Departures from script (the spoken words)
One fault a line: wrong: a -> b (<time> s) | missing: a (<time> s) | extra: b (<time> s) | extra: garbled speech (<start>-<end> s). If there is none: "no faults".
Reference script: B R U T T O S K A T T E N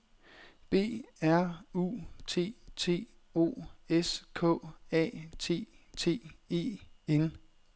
no faults